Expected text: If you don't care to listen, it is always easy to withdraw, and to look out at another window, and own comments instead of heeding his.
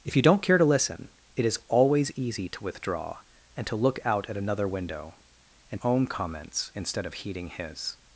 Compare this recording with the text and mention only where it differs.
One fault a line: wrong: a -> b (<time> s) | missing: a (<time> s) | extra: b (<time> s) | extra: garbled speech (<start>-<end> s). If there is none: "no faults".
no faults